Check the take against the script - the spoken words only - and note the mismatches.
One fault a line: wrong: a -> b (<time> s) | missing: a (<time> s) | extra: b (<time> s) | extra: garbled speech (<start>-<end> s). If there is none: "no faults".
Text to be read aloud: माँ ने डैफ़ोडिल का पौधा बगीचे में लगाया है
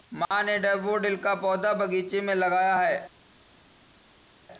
no faults